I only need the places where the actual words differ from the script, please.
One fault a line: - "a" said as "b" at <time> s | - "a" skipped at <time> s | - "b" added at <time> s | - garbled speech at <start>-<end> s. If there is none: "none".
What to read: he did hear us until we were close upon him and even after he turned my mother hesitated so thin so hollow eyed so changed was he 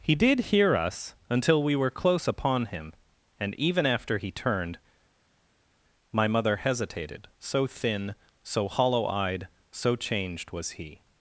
none